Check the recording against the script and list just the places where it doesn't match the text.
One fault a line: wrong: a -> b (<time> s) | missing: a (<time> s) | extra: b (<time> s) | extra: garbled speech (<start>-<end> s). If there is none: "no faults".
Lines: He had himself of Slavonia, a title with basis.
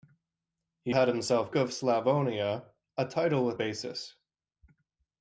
no faults